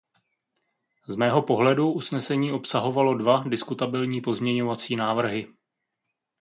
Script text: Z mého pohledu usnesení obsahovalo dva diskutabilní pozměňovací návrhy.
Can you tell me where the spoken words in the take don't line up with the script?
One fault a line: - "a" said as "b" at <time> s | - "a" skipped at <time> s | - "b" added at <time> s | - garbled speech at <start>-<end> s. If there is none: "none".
none